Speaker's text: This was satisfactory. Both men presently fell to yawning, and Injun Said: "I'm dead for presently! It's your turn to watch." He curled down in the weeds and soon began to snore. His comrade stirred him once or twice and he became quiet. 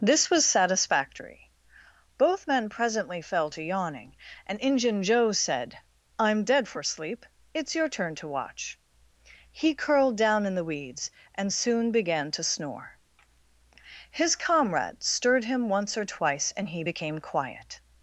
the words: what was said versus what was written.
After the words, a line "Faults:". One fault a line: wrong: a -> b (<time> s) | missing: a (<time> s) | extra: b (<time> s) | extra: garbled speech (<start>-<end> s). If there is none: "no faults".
This was satisfactory. Both men presently fell to yawning, and Injun Joe said: "I'm dead for sleep! It's your turn to watch." He curled down in the weeds and soon began to snore. His comrade stirred him once or twice and he became quiet.
Faults:
extra: Joe (5.0 s)
wrong: presently -> sleep (6.8 s)